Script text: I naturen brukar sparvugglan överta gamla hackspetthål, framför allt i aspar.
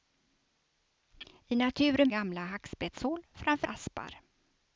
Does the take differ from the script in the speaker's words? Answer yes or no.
yes